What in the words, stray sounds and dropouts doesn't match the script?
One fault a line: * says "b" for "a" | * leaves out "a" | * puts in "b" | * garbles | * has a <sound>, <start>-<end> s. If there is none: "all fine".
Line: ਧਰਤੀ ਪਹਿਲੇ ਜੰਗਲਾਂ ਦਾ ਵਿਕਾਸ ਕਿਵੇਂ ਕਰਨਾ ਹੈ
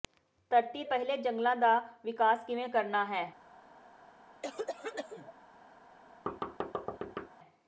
* has a cough, 4.4-5.3 s
* has a thud, 6.3-7.3 s